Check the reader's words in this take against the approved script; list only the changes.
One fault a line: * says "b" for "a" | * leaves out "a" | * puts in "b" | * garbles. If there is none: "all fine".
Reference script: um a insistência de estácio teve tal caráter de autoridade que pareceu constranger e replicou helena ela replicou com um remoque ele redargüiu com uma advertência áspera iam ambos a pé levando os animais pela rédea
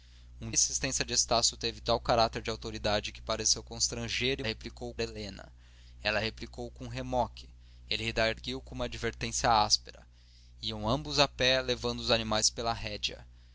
all fine